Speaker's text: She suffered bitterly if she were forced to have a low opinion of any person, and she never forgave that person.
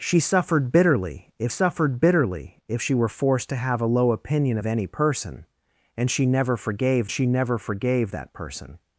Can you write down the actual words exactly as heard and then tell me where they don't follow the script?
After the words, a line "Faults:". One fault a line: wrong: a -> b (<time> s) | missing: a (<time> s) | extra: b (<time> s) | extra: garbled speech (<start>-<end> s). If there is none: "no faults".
She suffered bitterly if suffered bitterly if she were forced to have a low opinion of any person, and she never forgave she never forgave that person.
Faults:
extra: suffered bitterly if (1.5 s)
extra: she never forgave (7.1 s)